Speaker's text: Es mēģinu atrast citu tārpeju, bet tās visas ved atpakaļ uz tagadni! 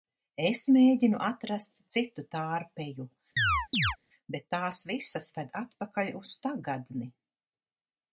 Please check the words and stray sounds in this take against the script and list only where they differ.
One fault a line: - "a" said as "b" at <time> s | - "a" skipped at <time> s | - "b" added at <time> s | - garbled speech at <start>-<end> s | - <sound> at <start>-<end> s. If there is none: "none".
- chirp at 3.4-4.0 s